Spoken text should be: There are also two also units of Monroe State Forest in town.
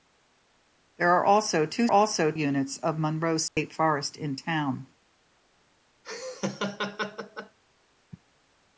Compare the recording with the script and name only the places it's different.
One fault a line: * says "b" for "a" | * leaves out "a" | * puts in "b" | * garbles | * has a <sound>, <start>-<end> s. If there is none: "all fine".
* has a dropout, 3.5-3.6 s
* has a laugh, 6.0-7.6 s